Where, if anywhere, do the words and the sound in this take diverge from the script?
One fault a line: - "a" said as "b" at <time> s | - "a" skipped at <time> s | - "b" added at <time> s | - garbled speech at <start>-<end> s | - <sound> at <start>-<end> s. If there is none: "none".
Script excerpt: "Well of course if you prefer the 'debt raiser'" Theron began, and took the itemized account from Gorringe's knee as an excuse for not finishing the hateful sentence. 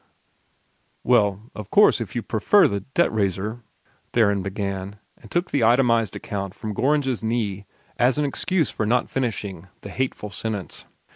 none